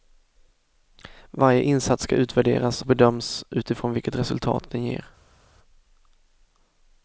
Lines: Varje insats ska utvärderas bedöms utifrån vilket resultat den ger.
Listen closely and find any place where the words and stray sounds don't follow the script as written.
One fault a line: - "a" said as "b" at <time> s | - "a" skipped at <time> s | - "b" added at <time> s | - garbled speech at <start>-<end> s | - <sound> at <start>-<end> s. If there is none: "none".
none